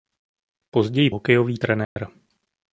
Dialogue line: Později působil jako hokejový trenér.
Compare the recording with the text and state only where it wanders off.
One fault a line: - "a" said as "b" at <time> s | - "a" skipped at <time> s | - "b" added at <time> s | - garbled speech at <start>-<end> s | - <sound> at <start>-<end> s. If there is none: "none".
- "působil jako" skipped at 1.1 s
- dropout at 1.8-2.0 s